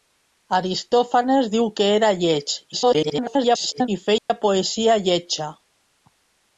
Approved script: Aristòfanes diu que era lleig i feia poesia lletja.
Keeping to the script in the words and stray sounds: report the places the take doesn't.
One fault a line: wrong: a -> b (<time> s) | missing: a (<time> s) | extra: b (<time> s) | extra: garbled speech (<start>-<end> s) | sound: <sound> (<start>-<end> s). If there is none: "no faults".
extra: garbled speech (2.7-3.9 s)
sound: dropout (4.2-4.3 s)